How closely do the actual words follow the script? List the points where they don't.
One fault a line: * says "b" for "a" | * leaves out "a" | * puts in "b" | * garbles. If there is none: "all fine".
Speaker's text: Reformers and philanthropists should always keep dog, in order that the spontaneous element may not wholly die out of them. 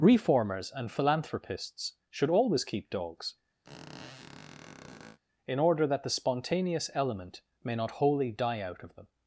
* says "dogs" for "dog"